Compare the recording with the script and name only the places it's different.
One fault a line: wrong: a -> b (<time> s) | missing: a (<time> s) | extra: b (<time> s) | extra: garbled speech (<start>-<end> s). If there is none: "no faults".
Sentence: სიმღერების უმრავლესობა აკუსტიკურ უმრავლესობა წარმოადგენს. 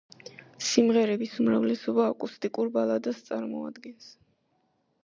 wrong: უმრავლესობა -> ბალადას (2.8 s)